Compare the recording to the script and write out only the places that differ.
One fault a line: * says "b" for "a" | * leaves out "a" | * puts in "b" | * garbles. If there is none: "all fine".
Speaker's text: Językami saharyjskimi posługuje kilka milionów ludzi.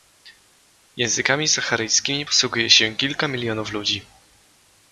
* puts in "się"